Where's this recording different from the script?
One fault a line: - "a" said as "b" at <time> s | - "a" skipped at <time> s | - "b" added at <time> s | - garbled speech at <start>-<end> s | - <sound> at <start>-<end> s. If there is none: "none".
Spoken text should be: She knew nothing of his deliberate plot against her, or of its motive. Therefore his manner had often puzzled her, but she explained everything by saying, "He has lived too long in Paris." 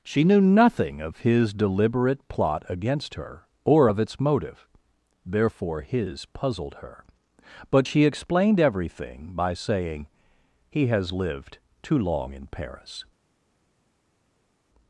- "manner had often" skipped at 6.2 s